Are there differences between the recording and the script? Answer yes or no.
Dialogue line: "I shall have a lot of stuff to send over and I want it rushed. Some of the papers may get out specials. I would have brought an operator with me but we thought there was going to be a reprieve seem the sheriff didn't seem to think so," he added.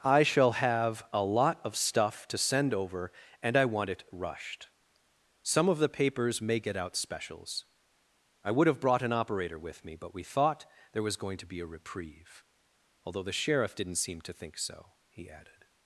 yes